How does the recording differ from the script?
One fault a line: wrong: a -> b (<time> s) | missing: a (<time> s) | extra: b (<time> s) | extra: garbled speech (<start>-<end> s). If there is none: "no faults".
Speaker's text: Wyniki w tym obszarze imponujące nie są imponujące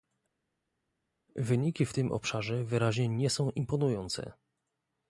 wrong: imponujące -> wyraźnie (2.6 s)